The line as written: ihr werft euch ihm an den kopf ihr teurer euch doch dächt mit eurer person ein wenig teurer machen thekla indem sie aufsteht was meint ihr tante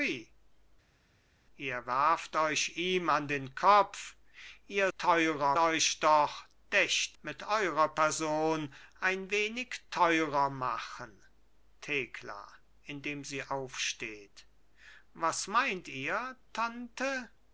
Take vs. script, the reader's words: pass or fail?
pass